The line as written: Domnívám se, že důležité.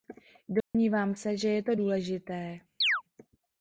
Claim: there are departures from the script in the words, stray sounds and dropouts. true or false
true